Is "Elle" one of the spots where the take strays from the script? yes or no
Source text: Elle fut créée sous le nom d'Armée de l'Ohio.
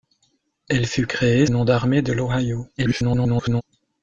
no